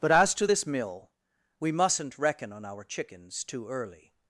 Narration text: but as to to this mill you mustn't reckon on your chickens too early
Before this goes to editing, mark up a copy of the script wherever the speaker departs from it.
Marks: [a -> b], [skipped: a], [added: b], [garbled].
but as to [skipped: to] this mill [you -> we] mustn't reckon on [your -> our] chickens too early